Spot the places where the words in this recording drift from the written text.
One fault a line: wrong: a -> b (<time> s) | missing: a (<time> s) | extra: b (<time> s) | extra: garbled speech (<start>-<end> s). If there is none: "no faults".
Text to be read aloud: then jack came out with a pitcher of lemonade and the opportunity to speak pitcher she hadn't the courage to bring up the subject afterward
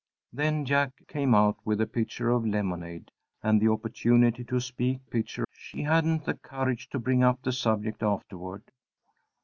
no faults